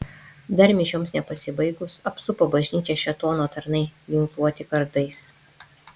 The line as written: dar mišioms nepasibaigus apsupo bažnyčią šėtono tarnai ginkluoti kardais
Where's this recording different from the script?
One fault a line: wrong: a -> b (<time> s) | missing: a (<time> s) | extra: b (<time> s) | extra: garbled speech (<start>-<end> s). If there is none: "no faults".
no faults